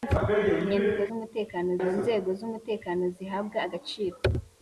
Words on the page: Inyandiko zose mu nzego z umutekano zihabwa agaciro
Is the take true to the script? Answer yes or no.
no